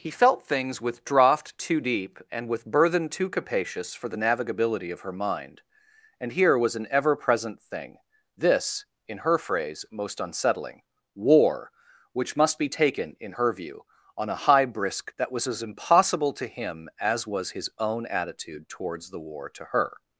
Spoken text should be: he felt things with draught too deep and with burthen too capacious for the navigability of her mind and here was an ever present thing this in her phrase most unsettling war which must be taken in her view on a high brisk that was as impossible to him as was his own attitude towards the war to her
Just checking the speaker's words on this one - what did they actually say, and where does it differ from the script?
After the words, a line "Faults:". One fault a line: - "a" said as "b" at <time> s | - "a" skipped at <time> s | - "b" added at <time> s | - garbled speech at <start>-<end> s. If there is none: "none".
he felt things with draught too deep and with burthen too capacious for the navigability of her mind and here was an ever present thing this in her phrase most unsettling war which must be taken in her view on a high brisk that was as impossible to him as was his own attitude towards the war to her
Faults:
none